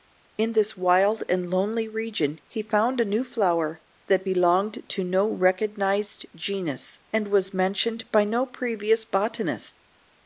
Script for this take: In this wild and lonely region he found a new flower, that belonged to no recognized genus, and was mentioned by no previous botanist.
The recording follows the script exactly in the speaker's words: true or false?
true